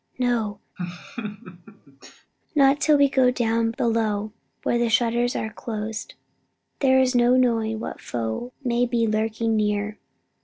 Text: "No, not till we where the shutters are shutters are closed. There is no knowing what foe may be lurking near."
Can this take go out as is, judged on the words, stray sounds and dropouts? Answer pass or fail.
fail